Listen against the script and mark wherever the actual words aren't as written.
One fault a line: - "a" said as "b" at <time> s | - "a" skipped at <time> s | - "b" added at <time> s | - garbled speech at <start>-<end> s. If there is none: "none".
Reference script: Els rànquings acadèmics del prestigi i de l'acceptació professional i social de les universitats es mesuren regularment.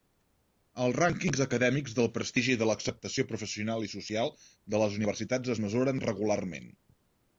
none